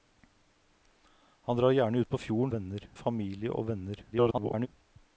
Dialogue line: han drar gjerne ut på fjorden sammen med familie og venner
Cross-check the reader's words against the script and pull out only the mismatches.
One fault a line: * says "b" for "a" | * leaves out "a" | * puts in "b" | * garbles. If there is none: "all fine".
* says "venner" for "sammen"
* garbles